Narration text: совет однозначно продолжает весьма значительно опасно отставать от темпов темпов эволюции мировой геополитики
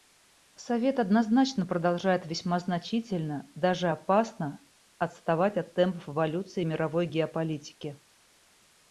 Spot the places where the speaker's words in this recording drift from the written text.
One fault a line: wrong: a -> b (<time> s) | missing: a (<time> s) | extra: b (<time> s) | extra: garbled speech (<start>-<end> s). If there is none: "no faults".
extra: даже (3.5 s)
missing: темпов (6.1 s)